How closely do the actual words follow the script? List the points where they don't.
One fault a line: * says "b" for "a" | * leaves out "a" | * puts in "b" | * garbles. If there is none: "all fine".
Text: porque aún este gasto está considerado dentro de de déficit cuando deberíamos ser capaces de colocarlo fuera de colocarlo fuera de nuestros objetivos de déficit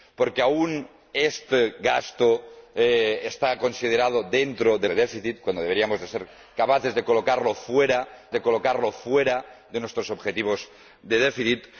all fine